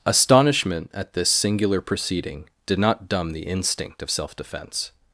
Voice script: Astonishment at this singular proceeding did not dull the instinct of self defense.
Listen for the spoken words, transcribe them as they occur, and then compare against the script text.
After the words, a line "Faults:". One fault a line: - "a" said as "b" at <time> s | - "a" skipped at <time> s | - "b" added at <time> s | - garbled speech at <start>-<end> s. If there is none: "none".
Astonishment at this singular proceeding did not dumb the instinct of self defense.
Faults:
- "dull" said as "dumb" at 3.1 s